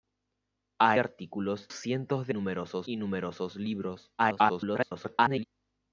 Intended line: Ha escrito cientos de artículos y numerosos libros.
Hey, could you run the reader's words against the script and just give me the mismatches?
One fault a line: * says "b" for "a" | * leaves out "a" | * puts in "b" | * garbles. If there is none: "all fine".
* says "artículos" for "escrito"
* says "numerosos" for "artículos"
* garbles